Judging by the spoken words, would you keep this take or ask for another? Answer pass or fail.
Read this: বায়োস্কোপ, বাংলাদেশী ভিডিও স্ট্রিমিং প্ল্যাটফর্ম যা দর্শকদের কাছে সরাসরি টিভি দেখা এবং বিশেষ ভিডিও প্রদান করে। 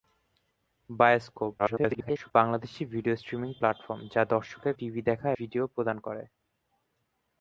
fail